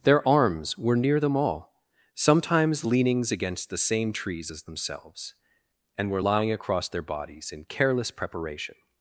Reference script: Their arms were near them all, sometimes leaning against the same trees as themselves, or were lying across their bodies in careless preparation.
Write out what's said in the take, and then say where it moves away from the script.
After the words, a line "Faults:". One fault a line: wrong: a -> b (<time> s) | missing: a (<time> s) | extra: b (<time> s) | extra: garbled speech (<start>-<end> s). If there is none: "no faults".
Their arms were near them all, sometimes leanings against the same trees as themselves, and were lying across their bodies in careless preparation.
Faults:
wrong: leaning -> leanings (2.8 s)
wrong: or -> and (6.0 s)